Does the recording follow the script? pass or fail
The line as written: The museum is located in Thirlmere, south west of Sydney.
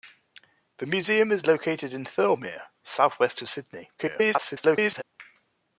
fail